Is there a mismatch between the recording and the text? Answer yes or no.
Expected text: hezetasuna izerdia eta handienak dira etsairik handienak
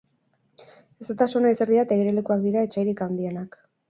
yes